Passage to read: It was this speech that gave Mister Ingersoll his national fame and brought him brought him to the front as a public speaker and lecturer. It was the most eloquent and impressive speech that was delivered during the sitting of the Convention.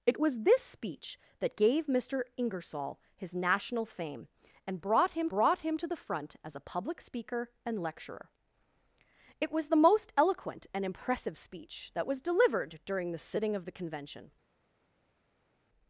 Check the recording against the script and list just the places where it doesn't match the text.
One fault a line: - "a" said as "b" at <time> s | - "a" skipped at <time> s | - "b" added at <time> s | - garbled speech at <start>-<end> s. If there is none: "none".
none